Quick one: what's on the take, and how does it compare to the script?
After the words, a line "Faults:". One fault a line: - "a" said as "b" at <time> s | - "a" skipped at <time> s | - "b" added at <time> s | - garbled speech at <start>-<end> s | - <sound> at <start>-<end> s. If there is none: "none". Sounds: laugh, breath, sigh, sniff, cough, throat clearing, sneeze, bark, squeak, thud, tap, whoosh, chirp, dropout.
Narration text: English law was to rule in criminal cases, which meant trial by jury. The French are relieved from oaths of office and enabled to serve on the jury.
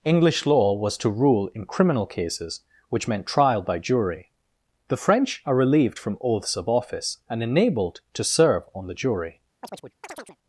English law was to rule in criminal cases, which meant trial by jury. The French are relieved from oaths of office and enabled to serve on the jury.
Faults:
- chirp at 9.6-10.4 s